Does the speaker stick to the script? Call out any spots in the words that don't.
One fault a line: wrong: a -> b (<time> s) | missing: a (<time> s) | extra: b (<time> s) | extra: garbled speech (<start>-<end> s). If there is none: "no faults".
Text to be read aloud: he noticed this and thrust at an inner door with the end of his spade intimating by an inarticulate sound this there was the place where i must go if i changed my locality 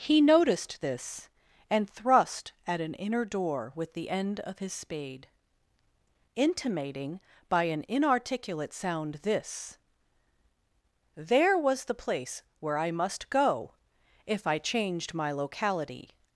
no faults